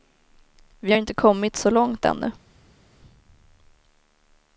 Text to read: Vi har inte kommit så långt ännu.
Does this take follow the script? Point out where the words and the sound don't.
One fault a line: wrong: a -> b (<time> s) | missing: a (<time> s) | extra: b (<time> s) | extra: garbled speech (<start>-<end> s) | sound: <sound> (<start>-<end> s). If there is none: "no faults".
no faults